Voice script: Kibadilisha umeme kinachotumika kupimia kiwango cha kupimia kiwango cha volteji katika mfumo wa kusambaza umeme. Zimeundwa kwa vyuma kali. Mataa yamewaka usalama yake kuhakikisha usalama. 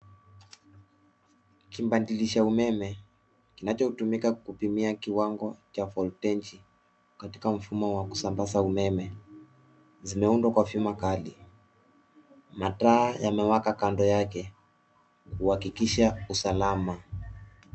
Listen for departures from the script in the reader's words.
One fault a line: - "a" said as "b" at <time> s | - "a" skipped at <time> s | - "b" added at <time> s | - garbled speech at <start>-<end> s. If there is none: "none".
- "kupimia kiwango cha" skipped at 5.8 s
- "usalama" said as "kando" at 13.7 s